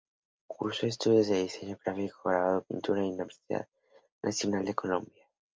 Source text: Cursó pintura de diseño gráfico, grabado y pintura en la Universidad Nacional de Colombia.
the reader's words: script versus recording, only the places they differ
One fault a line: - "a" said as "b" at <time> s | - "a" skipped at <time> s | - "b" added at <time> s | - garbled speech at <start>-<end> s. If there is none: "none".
- "pintura" said as "estudios" at 0.9 s